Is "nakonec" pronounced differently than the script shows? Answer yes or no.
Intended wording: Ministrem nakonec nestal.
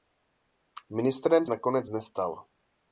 no